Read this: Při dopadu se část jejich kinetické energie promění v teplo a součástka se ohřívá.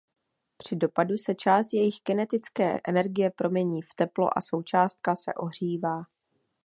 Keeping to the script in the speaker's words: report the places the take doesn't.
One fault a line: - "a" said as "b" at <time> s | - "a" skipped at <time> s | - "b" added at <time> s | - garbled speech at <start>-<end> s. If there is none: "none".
none